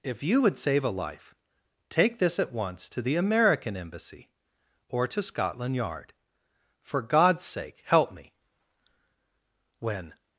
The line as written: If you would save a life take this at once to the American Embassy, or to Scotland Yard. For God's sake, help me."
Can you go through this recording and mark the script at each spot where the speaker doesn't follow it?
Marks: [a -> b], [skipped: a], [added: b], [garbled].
If you would save a life take this at once to the American Embassy, or to Scotland Yard. For God's sake, help me." [added: When]